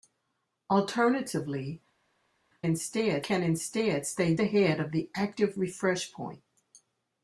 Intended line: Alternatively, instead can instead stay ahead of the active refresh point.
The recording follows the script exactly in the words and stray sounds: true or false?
true